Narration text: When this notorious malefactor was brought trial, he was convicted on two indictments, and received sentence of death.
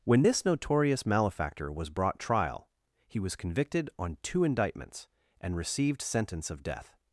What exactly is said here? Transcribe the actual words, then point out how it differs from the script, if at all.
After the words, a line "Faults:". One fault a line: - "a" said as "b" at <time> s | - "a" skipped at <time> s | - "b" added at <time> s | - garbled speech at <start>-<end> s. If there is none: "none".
When this notorious malefactor was brought trial, he was convicted on two indictments, and received sentence of death.
Faults:
none